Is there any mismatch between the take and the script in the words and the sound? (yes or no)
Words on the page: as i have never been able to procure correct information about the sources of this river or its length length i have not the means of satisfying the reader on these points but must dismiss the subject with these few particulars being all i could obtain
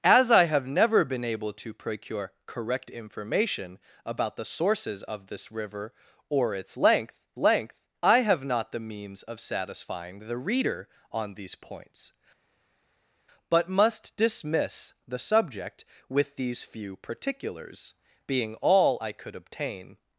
no